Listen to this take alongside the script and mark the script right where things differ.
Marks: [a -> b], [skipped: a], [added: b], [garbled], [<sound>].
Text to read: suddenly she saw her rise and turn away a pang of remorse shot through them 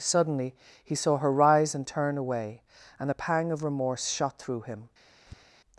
suddenly [she -> he] saw her rise and turn away [added: and] a pang of remorse shot through [them -> him] [tap]